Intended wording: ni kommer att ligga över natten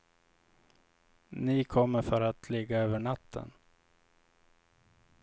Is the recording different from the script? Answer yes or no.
yes